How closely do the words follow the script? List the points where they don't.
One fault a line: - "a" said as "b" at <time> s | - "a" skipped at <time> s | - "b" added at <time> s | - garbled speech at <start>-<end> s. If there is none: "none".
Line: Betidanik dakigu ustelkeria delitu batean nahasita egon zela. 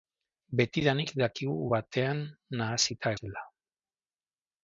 - "ustelkeria delitu" skipped at 1.6 s
- "egon" skipped at 3.1 s